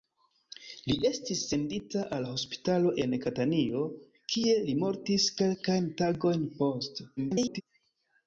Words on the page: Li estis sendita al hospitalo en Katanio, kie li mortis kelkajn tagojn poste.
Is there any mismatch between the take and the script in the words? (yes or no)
yes